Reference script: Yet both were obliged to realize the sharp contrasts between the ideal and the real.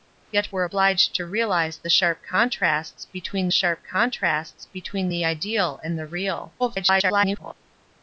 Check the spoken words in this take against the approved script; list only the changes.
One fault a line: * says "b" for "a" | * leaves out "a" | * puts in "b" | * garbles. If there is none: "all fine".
* leaves out "both"
* puts in "sharp contrasts between"
* garbles